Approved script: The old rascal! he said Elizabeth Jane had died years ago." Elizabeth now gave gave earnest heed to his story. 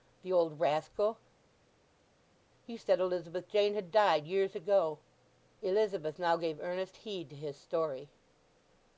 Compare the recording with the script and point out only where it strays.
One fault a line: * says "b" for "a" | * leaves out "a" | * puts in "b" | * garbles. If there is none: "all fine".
* leaves out "gave"